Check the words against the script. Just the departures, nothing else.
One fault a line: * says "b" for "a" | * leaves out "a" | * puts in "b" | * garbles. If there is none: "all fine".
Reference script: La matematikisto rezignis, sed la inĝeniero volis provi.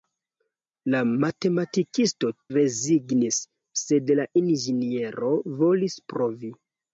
all fine